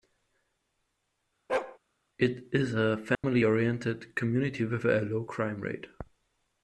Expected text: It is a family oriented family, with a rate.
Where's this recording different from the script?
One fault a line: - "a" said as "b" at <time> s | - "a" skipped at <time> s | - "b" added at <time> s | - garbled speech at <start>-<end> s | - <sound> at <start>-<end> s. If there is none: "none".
- bark at 1.5-1.8 s
- dropout at 3.1-3.2 s
- "family" said as "community" at 4.1 s
- "low crime" added at 5.0 s